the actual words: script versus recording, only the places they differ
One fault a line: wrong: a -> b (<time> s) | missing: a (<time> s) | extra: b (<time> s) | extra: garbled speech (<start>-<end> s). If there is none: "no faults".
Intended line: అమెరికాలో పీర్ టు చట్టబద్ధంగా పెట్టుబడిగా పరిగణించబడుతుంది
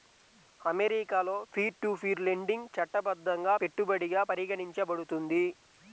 extra: పీర్ లెండింగ్ (2.0 s)